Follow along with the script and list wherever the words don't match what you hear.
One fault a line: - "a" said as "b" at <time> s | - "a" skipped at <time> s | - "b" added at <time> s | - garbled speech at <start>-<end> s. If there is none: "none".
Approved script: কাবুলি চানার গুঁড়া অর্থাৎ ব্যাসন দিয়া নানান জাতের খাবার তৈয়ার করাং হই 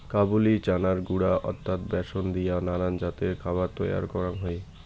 none